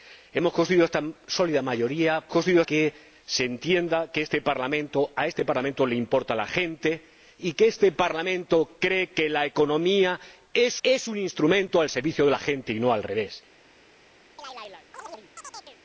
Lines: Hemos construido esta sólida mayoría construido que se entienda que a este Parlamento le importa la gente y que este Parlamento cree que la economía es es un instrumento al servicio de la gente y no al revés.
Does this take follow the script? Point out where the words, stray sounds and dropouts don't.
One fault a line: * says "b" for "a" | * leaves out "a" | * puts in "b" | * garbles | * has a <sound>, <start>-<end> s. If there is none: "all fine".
* has a chirp, 14.4-15.8 s